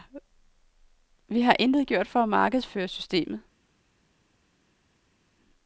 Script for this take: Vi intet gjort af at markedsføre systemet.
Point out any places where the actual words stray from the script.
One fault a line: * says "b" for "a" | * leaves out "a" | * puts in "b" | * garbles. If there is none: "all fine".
* puts in "har"
* says "for" for "af"